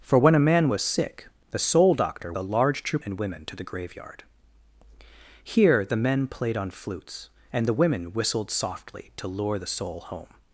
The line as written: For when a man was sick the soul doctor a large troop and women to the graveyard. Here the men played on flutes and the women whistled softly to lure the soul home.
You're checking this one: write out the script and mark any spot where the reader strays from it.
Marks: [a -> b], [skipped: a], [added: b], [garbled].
For when a man was sick the soul doctor a large troop and women to the graveyard. Here the men played on flutes and the women whistled softly to lure the soul home.